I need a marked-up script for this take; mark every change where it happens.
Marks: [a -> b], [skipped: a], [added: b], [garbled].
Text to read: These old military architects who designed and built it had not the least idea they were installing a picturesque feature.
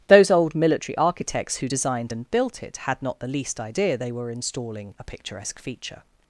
[These -> Those] old military architects who designed and built it had not the least idea they were installing a picturesque feature.